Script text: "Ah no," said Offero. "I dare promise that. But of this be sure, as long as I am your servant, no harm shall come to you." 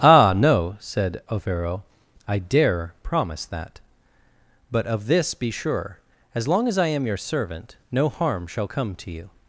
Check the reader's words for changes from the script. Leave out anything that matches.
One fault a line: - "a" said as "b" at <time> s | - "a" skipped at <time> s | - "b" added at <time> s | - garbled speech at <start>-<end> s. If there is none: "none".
none